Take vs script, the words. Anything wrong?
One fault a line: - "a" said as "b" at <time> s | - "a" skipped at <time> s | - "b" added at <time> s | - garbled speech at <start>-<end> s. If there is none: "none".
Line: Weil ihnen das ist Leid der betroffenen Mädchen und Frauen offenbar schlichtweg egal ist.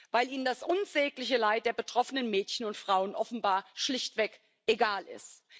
- "ist" said as "unsägliche" at 0.6 s